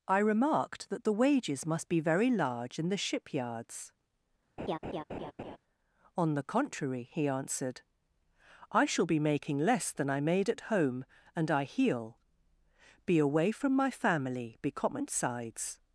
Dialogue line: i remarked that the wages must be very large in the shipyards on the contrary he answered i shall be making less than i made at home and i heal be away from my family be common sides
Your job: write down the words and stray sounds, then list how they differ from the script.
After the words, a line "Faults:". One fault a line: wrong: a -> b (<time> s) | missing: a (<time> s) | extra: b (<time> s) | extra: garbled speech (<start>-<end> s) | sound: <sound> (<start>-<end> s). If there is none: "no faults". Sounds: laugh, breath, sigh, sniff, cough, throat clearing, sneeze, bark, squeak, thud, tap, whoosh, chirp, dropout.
i remarked that the wages must be very large in the shipyards on the contrary he answered i shall be making less than i made at home and i heal be away from my family be common sides
Faults:
sound: laugh (4.6-5.6 s)